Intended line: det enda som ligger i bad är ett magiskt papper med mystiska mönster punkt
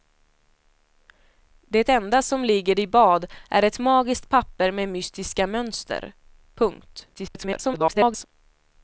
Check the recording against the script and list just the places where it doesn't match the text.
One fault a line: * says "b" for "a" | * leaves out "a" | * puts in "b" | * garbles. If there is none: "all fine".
* garbles